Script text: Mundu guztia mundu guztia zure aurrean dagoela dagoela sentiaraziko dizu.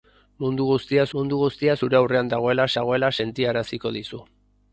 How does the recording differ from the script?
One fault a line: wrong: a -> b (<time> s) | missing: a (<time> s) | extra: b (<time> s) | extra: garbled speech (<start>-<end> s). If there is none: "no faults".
no faults